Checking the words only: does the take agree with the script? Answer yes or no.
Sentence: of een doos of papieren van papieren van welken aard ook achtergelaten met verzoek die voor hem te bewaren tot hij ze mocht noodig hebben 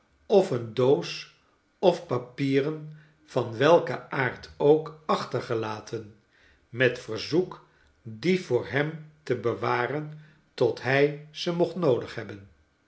no